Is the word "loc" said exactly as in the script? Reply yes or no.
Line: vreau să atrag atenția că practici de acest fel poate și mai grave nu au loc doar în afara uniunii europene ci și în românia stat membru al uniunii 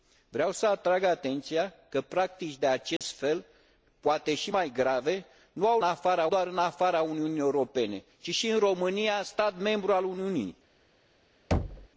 no